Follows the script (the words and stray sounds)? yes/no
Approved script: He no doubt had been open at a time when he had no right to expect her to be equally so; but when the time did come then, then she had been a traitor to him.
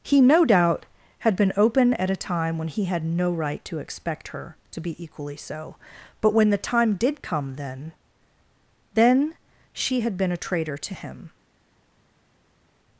yes